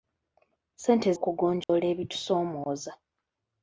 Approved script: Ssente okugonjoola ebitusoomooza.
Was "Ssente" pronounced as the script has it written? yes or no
yes